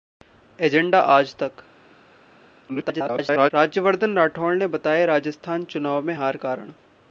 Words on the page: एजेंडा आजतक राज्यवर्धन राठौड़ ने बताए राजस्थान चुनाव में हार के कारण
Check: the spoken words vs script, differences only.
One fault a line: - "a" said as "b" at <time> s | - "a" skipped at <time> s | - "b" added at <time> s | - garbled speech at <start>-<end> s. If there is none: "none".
- garbled speech at 2.7-3.5 s
- "के" skipped at 6.4 s